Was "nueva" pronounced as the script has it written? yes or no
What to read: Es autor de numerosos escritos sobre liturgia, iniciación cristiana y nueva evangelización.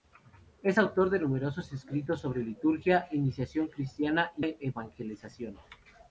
no